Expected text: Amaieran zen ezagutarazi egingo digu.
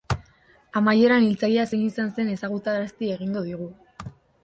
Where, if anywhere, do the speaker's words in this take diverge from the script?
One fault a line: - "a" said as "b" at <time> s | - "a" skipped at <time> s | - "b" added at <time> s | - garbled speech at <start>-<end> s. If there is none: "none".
- "hiltzailea zein izan" added at 1.3 s